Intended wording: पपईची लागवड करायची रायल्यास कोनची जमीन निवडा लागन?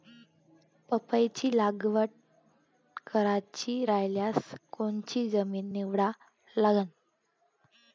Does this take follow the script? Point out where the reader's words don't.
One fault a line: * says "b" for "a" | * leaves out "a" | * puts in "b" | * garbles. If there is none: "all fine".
all fine